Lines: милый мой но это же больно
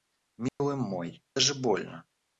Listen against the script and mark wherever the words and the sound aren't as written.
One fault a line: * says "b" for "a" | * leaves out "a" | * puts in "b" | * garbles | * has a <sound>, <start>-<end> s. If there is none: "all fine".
* has a dropout, 0.5-0.6 s
* leaves out "но это"